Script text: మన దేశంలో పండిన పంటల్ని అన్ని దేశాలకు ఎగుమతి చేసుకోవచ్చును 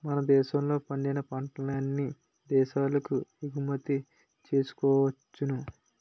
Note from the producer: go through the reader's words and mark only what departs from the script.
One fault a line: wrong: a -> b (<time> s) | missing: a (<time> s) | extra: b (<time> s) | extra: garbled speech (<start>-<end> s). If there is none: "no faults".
no faults